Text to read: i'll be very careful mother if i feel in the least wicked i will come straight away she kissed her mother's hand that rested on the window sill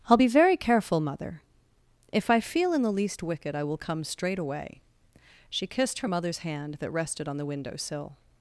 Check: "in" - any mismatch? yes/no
no